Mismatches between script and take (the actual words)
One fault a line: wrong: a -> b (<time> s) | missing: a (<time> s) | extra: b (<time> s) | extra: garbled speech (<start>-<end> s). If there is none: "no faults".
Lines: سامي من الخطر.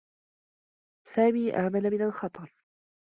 extra: آمن (1.6 s)